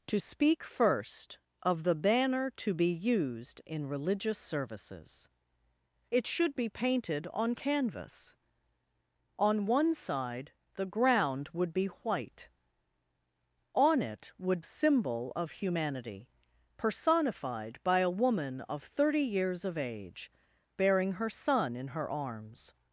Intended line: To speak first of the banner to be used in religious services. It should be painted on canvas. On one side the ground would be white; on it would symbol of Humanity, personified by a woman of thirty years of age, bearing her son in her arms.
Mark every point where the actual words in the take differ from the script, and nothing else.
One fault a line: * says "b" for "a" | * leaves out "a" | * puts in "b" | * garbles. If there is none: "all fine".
all fine